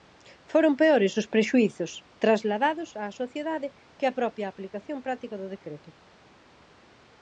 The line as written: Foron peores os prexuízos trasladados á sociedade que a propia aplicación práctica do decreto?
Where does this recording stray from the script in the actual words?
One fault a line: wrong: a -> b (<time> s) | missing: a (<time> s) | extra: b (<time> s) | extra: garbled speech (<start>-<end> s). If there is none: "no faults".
no faults